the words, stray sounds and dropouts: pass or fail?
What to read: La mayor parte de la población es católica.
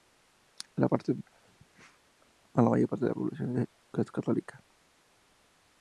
pass